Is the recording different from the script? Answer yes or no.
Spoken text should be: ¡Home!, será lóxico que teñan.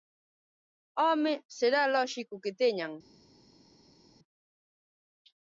no